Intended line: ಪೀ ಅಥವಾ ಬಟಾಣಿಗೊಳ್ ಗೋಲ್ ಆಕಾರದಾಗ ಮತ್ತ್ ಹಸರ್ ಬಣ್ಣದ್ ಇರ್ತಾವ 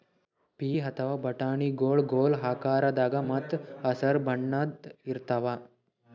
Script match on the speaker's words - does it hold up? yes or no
yes